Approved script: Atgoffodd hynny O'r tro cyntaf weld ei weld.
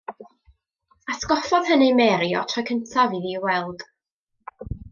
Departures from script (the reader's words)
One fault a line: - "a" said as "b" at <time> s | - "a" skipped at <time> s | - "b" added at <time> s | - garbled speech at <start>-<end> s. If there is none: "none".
- "Mary" added at 2.0 s
- "weld" said as "iddi" at 3.2 s